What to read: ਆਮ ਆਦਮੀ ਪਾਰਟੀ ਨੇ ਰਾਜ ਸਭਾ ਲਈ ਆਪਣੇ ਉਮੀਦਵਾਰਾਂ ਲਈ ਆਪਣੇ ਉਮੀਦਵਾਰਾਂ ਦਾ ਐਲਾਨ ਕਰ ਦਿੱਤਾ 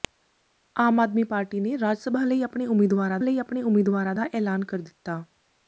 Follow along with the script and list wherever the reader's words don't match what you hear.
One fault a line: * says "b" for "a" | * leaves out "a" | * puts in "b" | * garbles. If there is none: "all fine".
all fine